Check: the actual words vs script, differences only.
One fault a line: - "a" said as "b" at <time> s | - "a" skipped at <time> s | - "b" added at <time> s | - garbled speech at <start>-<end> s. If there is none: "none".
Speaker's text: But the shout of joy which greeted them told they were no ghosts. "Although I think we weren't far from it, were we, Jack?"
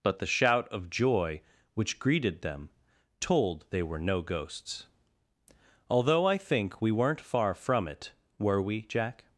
none